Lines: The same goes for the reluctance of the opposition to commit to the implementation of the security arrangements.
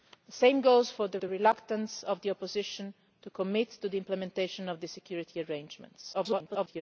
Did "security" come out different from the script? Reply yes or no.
no